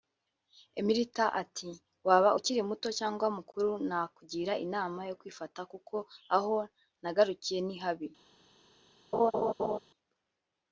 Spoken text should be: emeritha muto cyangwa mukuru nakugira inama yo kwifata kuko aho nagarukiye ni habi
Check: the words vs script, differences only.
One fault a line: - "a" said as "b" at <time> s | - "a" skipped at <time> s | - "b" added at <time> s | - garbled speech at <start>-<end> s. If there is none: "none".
- "ati waba ukiri" added at 1.4 s